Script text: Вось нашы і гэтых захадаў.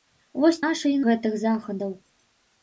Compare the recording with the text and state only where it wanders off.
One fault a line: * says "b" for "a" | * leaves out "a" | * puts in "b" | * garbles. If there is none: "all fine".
all fine